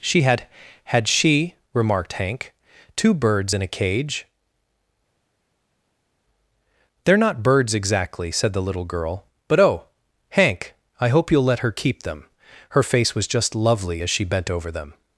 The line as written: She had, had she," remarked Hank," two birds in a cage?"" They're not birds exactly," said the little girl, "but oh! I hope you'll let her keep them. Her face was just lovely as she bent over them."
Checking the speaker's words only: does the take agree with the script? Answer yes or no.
no